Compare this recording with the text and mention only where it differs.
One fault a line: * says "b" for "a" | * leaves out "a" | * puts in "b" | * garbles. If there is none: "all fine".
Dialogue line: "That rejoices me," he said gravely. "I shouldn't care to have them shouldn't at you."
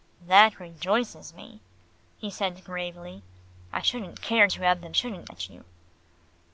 all fine